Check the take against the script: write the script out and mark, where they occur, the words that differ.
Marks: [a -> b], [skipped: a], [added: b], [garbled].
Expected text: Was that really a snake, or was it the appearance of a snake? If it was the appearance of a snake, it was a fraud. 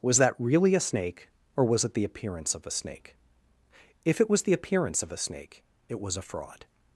Was that really a snake, or was it the appearance of a snake? If it was the appearance of a snake, it was a fraud.